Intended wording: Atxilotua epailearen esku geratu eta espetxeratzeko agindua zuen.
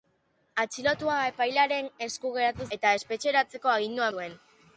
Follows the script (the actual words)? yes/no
yes